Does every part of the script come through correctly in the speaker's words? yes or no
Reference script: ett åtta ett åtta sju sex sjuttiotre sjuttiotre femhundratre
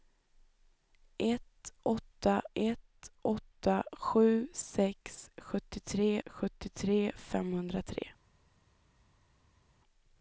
yes